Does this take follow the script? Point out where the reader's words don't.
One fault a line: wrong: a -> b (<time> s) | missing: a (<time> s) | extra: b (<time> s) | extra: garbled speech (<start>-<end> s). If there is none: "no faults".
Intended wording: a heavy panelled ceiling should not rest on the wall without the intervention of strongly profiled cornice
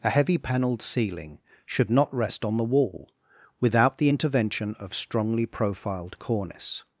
no faults